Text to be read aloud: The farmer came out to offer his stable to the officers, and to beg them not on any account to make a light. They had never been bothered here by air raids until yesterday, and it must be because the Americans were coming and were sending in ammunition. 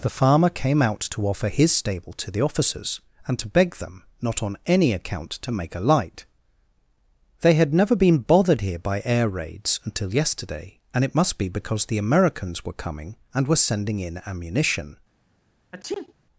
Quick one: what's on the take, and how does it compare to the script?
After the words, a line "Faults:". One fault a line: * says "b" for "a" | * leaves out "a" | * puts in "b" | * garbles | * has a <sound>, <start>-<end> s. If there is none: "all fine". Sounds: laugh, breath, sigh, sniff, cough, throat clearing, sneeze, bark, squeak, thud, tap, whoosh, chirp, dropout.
The farmer came out to offer his stable to the officers, and to beg them not on any account to make a light. They had never been bothered here by air raids until yesterday, and it must be because the Americans were coming and were sending in ammunition.
Faults:
* has a sneeze, 15.7-16.1 s